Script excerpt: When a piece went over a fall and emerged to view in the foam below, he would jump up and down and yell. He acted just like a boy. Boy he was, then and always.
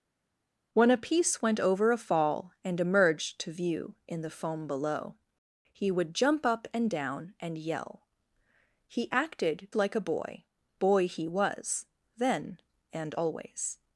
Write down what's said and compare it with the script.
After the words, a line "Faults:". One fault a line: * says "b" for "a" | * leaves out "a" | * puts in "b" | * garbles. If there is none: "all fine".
When a piece went over a fall and emerged to view in the foam below, he would jump up and down and yell. He acted like a boy. Boy he was, then and always.
Faults:
* leaves out "just"